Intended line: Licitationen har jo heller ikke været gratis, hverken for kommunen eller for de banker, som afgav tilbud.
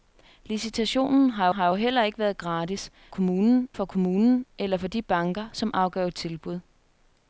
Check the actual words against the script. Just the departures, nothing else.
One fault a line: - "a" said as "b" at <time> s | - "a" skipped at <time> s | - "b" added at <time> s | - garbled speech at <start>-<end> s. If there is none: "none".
- "har" added at 1.5 s
- "hverken" said as "kommunen" at 3.1 s